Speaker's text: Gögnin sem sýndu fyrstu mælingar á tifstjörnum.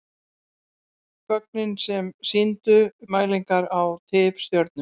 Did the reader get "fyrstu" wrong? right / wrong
wrong